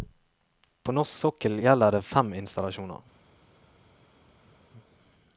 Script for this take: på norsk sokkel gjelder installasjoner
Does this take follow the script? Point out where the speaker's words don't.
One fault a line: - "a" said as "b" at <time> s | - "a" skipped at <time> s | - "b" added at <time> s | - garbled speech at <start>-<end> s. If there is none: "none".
- "det fem" added at 1.9 s